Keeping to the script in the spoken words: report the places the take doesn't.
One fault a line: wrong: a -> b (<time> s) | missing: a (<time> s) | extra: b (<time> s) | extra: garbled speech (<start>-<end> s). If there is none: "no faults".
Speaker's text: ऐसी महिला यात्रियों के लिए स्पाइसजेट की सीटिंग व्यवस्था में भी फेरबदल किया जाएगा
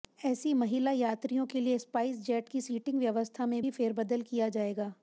no faults